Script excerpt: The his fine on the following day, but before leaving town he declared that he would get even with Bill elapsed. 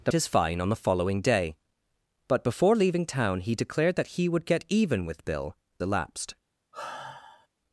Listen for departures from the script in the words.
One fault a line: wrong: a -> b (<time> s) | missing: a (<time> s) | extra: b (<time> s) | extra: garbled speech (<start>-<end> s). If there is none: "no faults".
no faults